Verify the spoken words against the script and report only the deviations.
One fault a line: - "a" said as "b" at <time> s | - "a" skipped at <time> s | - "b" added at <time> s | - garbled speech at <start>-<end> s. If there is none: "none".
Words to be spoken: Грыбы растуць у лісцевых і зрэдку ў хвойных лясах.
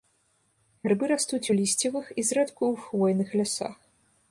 none